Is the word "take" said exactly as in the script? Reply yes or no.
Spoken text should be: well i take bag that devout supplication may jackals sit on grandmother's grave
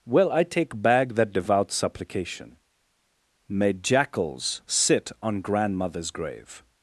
yes